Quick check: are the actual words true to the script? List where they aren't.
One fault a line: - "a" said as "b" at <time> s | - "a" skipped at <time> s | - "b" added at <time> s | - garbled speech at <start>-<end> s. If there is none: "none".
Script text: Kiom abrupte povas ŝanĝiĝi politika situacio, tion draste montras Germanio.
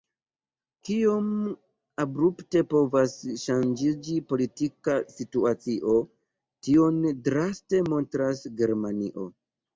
none